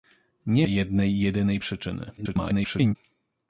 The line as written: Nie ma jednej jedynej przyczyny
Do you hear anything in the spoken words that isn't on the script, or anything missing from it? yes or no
yes